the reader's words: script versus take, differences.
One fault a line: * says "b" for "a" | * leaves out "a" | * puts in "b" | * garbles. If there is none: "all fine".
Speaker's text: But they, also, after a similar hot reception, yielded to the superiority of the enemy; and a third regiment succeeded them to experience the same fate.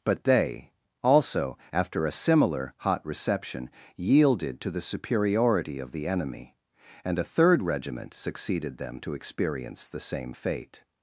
all fine